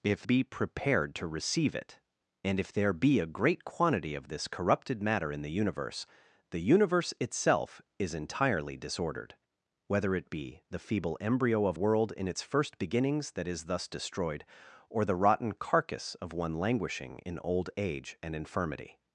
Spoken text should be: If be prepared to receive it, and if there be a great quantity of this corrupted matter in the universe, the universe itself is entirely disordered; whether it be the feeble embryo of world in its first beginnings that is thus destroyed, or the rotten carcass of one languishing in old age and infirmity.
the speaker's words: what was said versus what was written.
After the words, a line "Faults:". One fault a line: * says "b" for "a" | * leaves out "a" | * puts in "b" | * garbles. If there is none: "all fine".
If be prepared to receive it, and if there be a great quantity of this corrupted matter in the universe, the universe itself is entirely disordered; whether it be the feeble embryo of world in its first beginnings that is thus destroyed, or the rotten carcass of one languishing in old age and infirmity.
Faults:
all fine